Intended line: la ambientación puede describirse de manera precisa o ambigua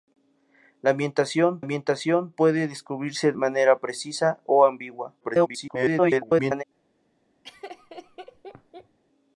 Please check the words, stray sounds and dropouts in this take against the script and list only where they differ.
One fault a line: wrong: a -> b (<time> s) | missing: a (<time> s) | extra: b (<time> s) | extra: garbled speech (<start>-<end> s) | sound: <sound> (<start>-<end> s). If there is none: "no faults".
extra: ambientación (1.6 s)
missing: de (3.3 s)
extra: garbled speech (5.2-6.6 s)
sound: laugh (7.4-9.0 s)